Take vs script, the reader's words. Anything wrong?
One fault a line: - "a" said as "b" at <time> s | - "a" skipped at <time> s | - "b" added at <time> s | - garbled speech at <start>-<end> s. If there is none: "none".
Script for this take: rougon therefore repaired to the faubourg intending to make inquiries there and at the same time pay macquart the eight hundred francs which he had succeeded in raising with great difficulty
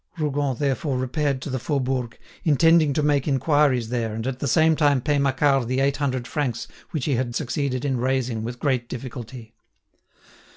none